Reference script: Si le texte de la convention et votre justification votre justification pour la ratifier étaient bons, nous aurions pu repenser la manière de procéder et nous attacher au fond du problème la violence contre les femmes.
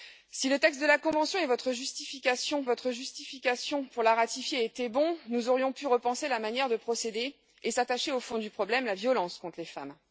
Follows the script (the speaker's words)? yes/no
yes